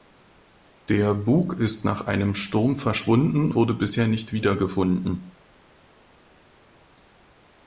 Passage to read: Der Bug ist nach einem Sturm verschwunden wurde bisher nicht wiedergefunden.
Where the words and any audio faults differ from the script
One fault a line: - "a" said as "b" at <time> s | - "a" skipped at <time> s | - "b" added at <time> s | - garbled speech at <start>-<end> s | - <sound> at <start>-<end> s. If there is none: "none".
none